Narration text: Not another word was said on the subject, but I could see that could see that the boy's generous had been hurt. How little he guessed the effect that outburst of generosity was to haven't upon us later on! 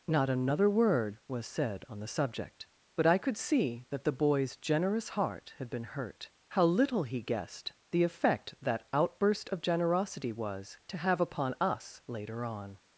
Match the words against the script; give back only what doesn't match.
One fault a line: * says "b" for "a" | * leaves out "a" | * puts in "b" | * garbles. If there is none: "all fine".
* leaves out "could see that"
* puts in "heart"
* says "have" for "haven't"